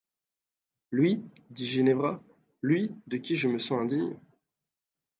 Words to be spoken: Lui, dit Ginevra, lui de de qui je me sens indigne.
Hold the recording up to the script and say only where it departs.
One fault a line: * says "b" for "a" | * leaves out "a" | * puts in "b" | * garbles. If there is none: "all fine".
* leaves out "de"